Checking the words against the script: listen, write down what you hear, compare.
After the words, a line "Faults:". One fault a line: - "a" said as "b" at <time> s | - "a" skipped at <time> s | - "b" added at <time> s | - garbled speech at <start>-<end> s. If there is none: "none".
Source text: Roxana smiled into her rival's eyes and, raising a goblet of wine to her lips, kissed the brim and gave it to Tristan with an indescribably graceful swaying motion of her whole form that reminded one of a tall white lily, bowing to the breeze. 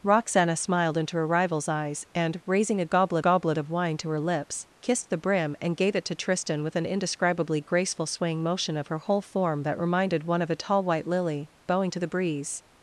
Roxana smiled into her rival's eyes and, raising a goblet goblet of wine to her lips, kissed the brim and gave it to Tristan with an indescribably graceful swaying motion of her whole form that reminded one of a tall white lily, bowing to the breeze.
Faults:
- "goblet" added at 3.2 s